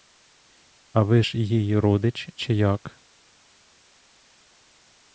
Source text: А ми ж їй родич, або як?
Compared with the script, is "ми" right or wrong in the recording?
wrong